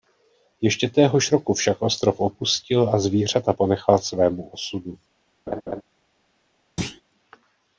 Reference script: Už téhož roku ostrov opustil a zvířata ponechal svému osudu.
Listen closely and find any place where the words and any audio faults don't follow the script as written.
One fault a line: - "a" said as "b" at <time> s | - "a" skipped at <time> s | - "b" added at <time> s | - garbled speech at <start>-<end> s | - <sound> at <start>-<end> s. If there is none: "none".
- "Už" said as "Ještě" at 0.6 s
- "však" added at 1.5 s
- laugh at 5.5-5.8 s
- thud at 6.8-7.0 s